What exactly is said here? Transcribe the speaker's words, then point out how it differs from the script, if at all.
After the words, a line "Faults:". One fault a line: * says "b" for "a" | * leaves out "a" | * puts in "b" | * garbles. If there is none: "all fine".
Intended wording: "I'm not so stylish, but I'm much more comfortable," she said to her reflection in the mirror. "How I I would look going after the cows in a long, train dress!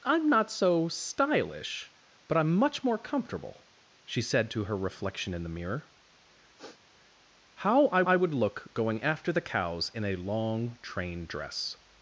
"I'm not so stylish, but I'm much more comfortable," she said to her reflection in the mirror. "How I I would look going after the cows in a long, train dress!
Faults:
all fine